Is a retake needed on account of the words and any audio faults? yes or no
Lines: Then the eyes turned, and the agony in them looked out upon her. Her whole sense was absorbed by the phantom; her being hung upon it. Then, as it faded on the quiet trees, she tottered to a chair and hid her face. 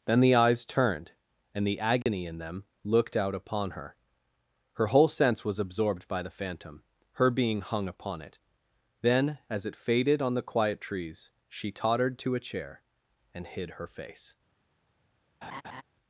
yes